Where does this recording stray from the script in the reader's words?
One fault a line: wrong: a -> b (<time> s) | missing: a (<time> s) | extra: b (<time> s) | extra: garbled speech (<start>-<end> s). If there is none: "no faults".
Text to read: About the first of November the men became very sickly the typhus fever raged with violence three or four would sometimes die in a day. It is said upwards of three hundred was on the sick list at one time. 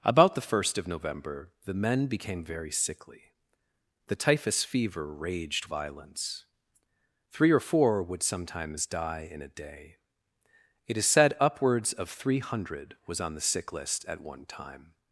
missing: with (5.7 s)